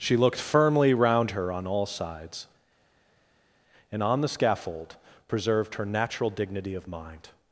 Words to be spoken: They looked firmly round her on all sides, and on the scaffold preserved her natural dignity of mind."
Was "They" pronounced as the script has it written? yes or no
no